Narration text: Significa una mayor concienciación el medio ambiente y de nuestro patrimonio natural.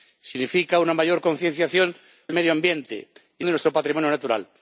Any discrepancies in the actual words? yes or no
no